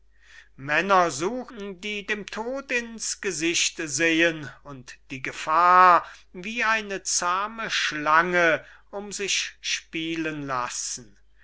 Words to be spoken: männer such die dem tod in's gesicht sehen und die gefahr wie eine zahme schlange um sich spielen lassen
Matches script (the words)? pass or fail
pass